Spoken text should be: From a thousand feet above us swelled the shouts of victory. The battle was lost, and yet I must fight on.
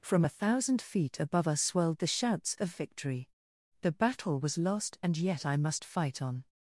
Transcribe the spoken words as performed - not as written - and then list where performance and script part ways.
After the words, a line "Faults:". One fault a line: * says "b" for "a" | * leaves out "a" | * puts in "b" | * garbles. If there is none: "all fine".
From a thousand feet above us swelled the shouts of victory. The battle was lost, and yet I must fight on.
Faults:
all fine